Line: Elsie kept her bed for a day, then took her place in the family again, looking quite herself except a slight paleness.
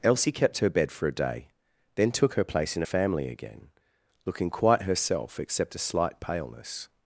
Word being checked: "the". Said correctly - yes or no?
no